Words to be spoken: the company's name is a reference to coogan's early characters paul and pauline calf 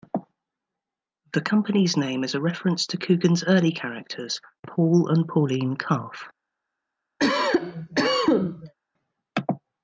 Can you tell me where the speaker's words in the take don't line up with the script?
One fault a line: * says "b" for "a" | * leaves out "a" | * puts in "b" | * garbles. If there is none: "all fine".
all fine